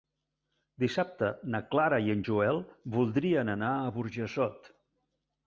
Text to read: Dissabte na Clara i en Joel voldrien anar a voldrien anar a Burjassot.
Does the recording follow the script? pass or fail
fail